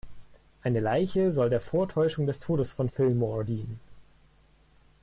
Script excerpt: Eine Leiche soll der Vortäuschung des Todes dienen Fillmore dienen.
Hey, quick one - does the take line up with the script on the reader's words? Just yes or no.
no